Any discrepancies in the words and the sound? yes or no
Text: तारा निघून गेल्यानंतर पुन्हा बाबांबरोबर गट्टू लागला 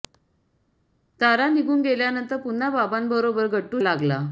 no